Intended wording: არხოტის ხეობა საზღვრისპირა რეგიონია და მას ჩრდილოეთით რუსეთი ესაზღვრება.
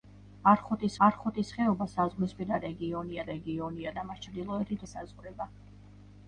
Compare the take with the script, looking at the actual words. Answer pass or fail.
fail